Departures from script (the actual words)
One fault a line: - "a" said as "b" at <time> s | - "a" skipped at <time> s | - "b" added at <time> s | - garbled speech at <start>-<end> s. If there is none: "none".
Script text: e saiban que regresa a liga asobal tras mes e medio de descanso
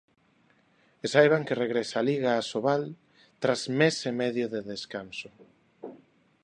none